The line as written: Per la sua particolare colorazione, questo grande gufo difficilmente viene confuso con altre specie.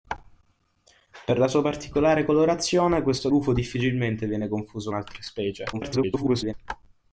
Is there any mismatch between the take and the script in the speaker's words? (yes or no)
yes